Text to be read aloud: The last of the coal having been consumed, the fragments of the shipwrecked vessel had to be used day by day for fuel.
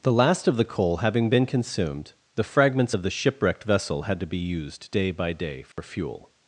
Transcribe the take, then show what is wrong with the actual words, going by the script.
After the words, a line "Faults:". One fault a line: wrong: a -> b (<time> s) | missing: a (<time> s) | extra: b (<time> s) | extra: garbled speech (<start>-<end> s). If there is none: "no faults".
The last of the coal having been consumed, the fragments of the shipwrecked vessel had to be used day by day for fuel.
Faults:
no faults